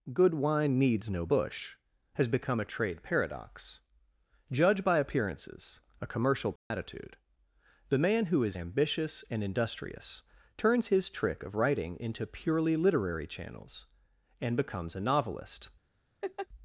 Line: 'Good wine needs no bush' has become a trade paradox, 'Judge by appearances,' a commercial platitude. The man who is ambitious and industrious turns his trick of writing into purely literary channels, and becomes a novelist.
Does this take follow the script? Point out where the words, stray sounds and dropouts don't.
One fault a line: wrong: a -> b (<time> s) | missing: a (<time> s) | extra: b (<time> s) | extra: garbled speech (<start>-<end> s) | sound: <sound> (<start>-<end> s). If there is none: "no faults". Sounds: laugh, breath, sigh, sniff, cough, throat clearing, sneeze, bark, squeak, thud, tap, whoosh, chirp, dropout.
sound: dropout (6.6-6.7 s)
sound: laugh (16.2-16.5 s)